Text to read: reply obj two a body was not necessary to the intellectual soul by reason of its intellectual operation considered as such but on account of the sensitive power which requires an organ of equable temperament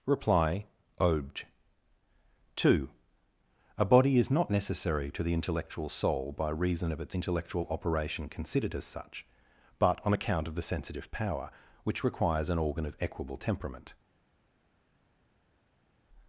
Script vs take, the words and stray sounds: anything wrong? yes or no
yes